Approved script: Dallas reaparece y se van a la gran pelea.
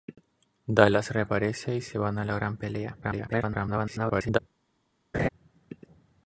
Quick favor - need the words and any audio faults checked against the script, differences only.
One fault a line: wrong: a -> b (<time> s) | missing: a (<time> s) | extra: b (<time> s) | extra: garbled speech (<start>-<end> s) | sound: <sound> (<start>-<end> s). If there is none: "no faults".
extra: garbled speech (3.0-4.4 s)
sound: laugh (5.1-5.3 s)